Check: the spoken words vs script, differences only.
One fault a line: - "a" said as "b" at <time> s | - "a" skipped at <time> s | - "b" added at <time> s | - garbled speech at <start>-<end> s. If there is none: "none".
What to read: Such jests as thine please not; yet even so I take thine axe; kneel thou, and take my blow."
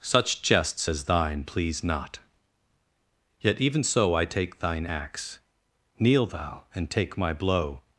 none